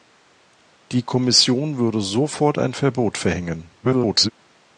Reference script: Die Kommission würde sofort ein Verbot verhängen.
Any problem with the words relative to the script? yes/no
yes